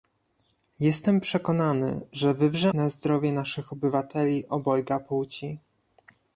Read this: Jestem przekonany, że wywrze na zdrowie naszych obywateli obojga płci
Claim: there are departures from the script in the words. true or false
false